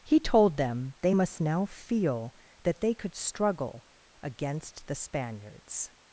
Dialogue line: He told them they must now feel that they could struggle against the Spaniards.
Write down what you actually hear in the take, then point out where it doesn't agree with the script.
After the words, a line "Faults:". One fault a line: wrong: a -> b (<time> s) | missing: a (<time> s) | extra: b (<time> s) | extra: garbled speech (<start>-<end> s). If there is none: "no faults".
He told them they must now feel that they could struggle against the Spaniards.
Faults:
no faults